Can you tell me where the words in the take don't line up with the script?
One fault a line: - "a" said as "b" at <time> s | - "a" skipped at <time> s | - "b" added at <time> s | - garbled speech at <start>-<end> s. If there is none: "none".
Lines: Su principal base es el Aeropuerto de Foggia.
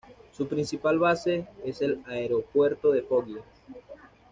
none